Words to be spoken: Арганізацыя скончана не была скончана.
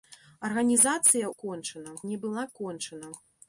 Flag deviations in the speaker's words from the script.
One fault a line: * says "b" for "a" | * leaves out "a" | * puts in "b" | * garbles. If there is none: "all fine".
all fine